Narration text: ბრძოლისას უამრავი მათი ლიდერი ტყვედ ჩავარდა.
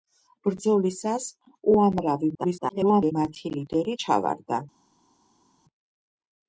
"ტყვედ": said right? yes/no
no